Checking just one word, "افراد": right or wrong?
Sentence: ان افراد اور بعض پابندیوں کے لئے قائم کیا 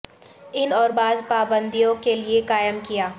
wrong